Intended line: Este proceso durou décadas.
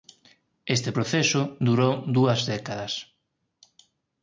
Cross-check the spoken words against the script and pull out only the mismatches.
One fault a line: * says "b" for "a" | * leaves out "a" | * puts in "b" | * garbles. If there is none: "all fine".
* puts in "dúas"